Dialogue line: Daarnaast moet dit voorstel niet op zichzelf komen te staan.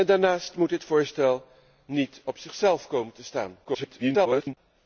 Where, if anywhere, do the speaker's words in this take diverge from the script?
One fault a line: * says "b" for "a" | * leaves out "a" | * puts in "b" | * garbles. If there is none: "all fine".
* garbles